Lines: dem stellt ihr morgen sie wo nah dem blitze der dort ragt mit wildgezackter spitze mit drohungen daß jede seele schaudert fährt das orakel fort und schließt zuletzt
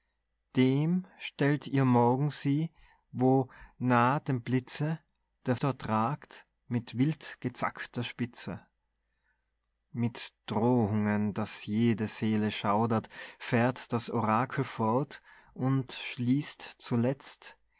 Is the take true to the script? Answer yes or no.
yes